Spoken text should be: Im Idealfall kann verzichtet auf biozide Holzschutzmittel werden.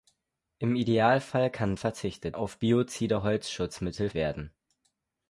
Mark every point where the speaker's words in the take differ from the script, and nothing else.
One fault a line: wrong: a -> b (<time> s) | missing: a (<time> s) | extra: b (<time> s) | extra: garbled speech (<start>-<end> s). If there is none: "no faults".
no faults